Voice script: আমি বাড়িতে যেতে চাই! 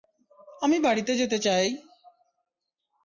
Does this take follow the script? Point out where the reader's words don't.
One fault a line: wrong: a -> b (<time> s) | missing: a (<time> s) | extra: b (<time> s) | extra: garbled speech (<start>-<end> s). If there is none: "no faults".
no faults